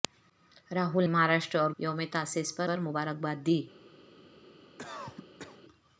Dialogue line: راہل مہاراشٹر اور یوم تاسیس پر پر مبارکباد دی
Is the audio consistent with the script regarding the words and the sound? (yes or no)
no